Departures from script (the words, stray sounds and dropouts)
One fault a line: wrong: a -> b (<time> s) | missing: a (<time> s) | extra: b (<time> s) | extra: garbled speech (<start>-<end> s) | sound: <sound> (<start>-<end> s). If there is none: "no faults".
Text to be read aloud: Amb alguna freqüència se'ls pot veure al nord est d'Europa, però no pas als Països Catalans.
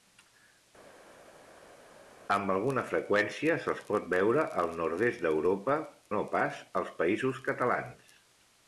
missing: però (5.8 s)